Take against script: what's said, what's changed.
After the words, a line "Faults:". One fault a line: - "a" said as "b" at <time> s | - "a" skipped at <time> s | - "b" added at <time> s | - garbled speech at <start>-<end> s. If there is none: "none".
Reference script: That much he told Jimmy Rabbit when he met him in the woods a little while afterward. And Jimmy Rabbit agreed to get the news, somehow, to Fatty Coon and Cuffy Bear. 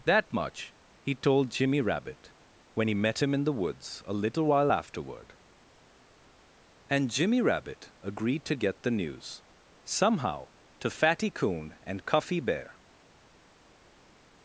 That much he told Jimmy Rabbit when he met him in the woods a little while afterward. And Jimmy Rabbit agreed to get the news, somehow, to Fatty Coon and Cuffy Bear.
Faults:
none